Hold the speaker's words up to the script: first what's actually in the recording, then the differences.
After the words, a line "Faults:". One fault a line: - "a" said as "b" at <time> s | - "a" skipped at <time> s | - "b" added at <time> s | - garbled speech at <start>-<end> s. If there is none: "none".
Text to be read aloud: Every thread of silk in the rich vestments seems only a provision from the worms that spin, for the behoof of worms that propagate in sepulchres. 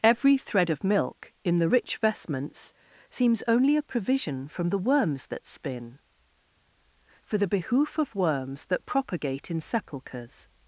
Every thread of milk in the rich vestments seems only a provision from the worms that spin, for the behoof of worms that propagate in sepulchres.
Faults:
- "silk" said as "milk" at 0.8 s